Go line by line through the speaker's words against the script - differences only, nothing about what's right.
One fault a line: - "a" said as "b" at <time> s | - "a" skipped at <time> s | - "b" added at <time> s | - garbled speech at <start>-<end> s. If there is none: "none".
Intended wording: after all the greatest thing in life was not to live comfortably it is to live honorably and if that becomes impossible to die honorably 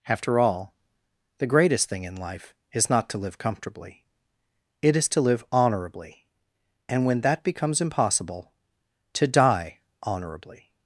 - "was" said as "is" at 2.7 s
- "if" said as "when" at 7.0 s